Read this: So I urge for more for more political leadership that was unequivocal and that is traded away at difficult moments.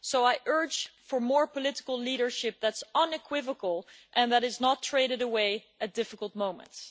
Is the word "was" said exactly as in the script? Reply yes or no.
no